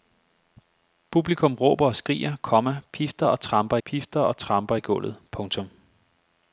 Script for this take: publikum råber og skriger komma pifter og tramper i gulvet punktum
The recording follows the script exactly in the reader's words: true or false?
false